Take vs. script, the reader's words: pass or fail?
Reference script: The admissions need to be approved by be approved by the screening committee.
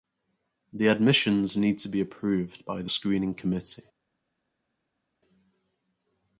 fail